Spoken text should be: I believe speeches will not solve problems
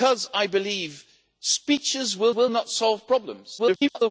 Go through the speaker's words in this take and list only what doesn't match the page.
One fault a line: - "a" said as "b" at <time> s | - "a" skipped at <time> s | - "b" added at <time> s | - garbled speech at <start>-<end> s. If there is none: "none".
- "will" added at 2.3 s
- garbled speech at 3.6-4.1 s